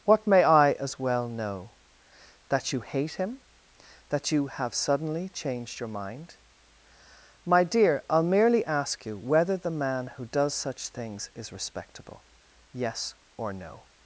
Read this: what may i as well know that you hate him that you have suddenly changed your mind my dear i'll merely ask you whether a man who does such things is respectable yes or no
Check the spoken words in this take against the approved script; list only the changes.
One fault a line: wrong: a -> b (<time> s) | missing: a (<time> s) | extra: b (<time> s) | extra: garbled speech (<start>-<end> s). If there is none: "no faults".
wrong: a -> the (9.6 s)